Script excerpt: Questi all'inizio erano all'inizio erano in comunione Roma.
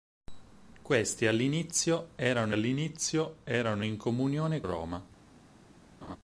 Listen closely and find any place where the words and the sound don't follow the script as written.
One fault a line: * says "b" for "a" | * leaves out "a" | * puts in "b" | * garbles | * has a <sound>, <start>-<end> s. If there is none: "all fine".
* has a laugh, 6.0-6.2 s